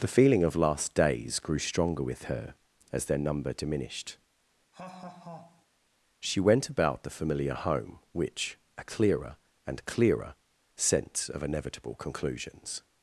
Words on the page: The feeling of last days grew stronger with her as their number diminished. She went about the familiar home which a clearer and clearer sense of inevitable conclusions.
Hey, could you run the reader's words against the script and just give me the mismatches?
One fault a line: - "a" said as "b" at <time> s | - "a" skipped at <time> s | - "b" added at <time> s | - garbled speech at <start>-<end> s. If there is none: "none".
none